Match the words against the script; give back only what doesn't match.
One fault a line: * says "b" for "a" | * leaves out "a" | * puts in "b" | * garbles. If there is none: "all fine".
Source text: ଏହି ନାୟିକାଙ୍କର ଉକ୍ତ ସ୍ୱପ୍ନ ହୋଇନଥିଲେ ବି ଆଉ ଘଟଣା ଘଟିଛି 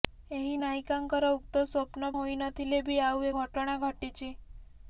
all fine